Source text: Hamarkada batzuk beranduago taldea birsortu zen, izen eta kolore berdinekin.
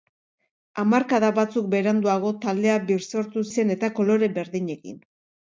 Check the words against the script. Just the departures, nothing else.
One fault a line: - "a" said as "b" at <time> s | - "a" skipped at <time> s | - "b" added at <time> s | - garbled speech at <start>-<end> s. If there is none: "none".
- "zen" skipped at 3.5 s